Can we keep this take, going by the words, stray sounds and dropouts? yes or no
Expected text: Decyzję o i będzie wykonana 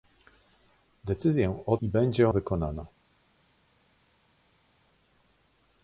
yes